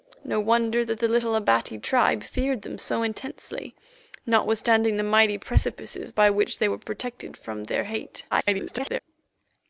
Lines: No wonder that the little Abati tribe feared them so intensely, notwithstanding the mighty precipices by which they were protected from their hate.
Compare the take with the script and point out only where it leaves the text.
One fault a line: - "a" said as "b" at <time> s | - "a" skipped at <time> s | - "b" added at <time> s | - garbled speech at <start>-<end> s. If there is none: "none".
- garbled speech at 8.3-9.0 s